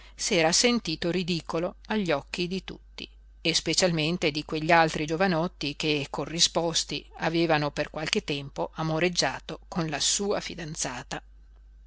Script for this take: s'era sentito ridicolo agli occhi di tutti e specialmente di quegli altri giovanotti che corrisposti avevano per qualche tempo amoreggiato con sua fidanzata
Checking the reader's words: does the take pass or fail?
fail